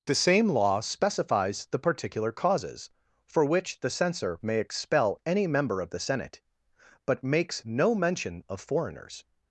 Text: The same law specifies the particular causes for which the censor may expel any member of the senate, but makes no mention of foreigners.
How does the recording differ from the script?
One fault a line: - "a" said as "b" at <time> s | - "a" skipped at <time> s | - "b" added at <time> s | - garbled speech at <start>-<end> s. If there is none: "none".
none